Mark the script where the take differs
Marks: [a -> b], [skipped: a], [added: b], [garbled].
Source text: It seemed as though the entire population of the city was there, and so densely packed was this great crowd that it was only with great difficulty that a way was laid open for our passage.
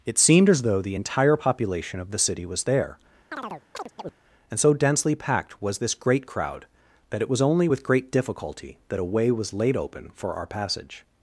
It seemed as though the entire population of the city was there, and so densely packed was this great crowd that it was only with great difficulty that a way was laid open for our passage.